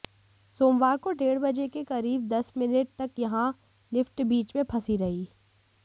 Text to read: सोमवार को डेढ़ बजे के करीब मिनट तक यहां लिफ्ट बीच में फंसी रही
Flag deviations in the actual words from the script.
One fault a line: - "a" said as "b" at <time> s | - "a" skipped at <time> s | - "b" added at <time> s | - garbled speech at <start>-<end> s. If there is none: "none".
- "दस" added at 2.3 s